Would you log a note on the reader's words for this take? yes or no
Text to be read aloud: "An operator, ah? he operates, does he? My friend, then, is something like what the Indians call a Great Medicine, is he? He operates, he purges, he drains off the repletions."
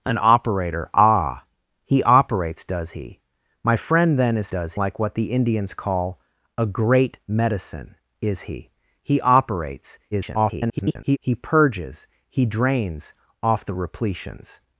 yes